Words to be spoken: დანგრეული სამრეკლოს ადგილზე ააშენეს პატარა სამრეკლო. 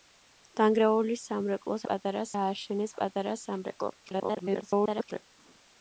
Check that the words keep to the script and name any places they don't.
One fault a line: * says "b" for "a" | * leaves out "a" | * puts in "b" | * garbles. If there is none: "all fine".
* says "პატარა" for "ადგილზე"
* garbles